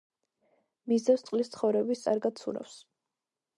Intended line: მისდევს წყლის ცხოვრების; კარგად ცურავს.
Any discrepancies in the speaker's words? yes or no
no